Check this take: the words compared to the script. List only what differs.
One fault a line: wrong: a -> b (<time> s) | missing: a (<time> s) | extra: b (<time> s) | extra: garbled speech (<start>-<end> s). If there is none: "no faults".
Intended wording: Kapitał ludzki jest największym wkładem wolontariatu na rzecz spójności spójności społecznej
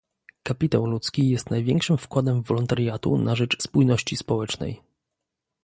missing: spójności (4.2 s)